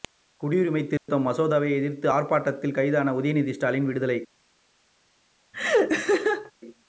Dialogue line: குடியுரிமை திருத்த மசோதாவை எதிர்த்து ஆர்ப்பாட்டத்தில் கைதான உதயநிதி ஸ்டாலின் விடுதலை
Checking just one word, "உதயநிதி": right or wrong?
right